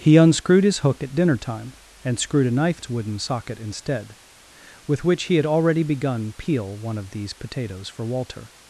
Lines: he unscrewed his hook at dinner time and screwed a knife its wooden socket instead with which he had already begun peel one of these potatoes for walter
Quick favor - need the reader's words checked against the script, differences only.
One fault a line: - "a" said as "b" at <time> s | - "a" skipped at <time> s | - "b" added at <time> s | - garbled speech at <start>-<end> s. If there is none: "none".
none